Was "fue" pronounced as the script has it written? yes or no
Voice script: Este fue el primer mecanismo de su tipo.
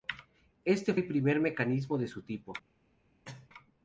no